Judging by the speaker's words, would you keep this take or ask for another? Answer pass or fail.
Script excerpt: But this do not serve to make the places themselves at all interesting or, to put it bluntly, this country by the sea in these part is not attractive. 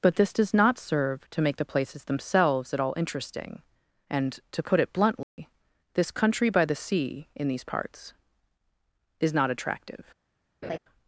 fail